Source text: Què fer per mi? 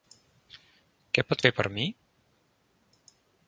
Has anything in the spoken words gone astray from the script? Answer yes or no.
yes